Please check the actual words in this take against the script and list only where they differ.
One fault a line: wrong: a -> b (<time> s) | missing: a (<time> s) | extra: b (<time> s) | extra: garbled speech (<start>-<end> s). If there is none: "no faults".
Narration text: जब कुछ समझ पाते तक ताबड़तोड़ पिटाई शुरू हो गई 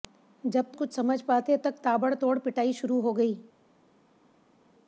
no faults